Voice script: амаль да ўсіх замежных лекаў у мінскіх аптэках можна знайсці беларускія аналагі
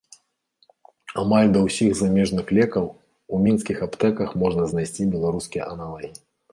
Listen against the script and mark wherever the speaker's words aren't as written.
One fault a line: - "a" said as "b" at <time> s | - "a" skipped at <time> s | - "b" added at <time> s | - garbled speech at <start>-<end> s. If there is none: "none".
none